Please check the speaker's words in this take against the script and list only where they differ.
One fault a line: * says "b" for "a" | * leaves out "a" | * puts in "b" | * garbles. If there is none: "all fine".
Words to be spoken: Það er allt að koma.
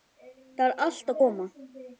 all fine